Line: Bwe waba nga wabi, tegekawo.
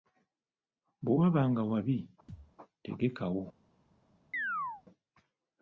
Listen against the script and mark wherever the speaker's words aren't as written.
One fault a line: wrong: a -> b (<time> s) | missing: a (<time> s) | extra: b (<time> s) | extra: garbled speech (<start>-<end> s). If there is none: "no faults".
no faults